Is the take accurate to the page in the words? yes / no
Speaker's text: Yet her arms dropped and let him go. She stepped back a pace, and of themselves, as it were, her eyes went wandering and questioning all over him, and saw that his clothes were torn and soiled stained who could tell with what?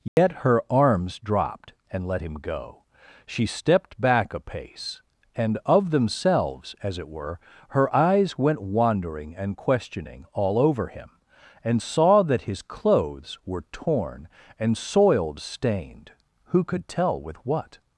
yes